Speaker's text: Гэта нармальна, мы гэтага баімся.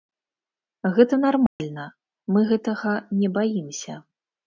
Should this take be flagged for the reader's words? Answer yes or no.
yes